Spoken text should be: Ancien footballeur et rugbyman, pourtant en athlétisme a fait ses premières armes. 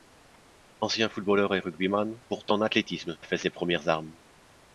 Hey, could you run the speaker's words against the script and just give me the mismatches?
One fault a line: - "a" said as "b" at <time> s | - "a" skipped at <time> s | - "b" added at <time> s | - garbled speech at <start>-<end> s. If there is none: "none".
none